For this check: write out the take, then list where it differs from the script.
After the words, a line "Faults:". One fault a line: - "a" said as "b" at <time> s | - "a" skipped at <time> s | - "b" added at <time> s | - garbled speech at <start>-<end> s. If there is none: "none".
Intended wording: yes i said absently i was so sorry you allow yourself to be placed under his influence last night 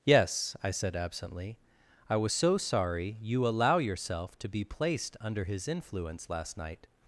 yes i said absently i was so sorry you allow yourself to be placed under his influence last night
Faults:
none